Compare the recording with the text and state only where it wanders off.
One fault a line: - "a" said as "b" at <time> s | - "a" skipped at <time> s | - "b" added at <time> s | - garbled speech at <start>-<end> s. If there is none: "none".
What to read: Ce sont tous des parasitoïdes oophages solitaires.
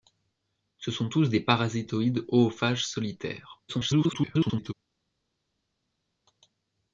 - garbled speech at 3.7-4.7 s